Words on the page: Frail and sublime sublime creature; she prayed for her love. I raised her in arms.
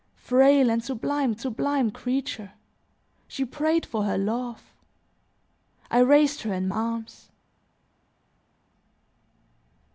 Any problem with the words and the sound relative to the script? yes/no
no